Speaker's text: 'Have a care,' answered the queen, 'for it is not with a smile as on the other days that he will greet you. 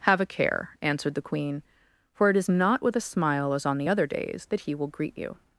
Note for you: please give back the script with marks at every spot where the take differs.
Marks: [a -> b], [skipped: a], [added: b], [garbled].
'Have a care,' answered the queen, 'for it is not with a smile as on the other days that he will greet you.